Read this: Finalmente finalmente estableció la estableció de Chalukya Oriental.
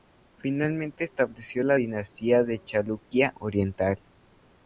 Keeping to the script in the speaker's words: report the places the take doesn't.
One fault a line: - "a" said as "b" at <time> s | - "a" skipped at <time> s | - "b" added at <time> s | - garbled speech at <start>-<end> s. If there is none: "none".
- "finalmente" skipped at 1.0 s
- "estableció" said as "dinastía" at 1.7 s